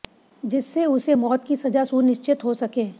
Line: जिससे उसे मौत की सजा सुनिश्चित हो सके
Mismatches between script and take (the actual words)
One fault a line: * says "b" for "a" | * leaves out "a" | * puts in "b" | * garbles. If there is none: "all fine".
all fine